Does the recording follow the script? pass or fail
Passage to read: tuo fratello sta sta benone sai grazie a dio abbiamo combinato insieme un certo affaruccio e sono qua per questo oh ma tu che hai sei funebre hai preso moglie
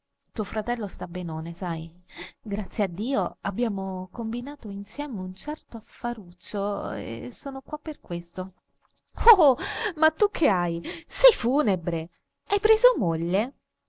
fail